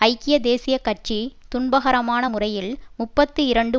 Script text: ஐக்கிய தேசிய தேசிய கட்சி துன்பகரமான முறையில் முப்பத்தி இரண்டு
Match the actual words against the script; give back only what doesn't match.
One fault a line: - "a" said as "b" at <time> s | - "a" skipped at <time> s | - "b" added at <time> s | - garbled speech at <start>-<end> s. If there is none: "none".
- "தேசிய" skipped at 0.8 s